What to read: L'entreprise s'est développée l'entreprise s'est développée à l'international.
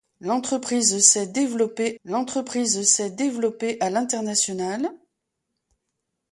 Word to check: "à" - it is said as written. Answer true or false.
true